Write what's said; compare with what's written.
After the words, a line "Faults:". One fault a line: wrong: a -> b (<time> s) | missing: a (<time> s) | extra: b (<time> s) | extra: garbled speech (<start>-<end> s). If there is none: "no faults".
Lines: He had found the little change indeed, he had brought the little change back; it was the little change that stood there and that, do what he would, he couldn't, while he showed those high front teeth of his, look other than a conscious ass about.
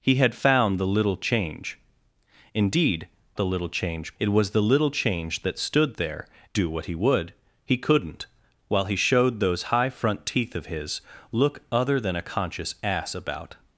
He had found the little change indeed, the little change; it was the little change that stood there do what he would, he couldn't, while he showed those high front teeth of his, look other than a conscious ass about.
Faults:
missing: he had brought (3.1 s)
missing: back (4.2 s)
missing: and that (6.3 s)